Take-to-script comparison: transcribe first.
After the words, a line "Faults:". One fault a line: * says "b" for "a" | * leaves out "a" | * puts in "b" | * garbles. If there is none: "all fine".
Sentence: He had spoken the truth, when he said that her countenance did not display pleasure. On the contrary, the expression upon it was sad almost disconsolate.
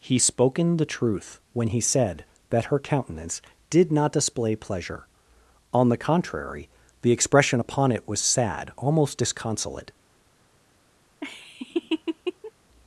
He spoken the truth, when he said that her countenance did not display pleasure. On the contrary, the expression upon it was sad almost disconsolate.
Faults:
* leaves out "had"